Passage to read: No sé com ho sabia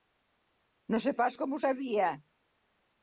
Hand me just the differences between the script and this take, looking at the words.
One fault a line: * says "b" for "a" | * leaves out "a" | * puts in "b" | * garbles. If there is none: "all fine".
* puts in "pas"